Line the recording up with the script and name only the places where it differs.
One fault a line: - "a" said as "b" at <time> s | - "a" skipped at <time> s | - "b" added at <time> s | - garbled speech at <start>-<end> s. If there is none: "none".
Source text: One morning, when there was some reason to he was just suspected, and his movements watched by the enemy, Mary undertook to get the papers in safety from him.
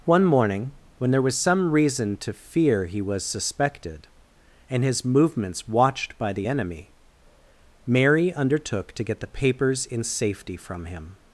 - "fear" added at 2.3 s
- "just" skipped at 3.2 s